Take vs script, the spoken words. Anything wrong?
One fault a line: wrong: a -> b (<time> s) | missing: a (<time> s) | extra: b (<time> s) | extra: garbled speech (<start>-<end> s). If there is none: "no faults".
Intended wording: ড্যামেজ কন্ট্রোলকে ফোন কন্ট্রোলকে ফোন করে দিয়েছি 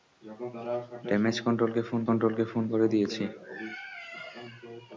no faults